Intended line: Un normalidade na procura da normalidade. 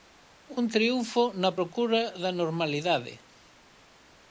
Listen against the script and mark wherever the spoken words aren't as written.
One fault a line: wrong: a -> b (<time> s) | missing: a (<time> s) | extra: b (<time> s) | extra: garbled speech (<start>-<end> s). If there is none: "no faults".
wrong: normalidade -> triunfo (0.8 s)